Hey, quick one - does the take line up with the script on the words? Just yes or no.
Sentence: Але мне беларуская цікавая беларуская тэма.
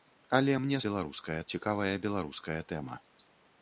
yes